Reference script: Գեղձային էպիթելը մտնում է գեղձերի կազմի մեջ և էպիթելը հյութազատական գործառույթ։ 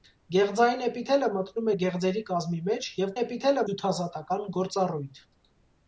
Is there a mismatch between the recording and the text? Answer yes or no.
no